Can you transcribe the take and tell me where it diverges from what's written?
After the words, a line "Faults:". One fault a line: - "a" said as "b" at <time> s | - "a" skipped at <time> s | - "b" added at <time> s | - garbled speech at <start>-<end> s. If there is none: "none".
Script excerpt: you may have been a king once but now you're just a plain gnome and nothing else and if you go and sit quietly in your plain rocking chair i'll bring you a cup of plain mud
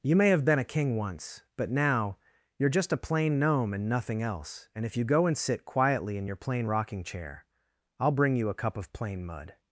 you may have been a king once but now you're just a plain gnome and nothing else and if you go and sit quietly in your plain rocking chair i'll bring you a cup of plain mud
Faults:
none